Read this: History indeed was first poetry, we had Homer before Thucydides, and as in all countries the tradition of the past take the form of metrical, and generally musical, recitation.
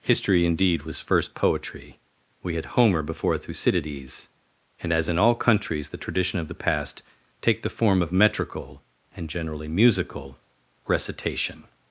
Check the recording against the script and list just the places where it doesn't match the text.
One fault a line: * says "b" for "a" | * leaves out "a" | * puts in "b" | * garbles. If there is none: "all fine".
all fine